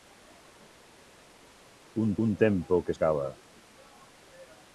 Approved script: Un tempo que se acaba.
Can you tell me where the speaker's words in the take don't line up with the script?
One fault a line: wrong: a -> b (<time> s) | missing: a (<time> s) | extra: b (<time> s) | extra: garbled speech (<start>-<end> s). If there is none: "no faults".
extra: un (2.2 s)
missing: se (2.9 s)